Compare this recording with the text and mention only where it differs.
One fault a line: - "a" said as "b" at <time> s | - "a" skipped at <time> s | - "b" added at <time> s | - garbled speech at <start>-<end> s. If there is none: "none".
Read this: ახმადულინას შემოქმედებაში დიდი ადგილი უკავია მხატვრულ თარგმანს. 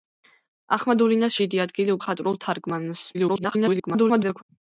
- "შემოქმედებაში" skipped at 1.4 s
- "უკავია" skipped at 2.0 s
- garbled speech at 3.1-4.4 s